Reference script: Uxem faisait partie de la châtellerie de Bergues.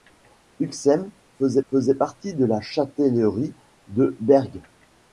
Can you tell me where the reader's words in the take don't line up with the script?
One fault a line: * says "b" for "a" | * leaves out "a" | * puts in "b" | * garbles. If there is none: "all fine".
* puts in "faisait"